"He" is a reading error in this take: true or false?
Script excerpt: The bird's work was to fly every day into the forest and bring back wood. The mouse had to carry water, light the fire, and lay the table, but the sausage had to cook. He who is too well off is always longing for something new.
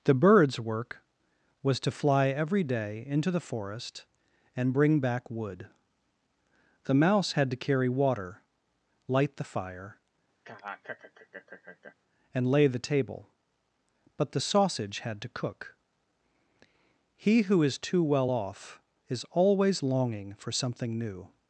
false